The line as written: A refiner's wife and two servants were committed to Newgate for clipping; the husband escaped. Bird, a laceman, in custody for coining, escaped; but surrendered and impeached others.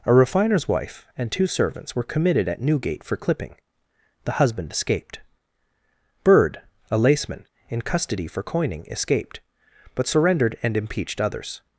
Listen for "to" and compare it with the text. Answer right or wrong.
wrong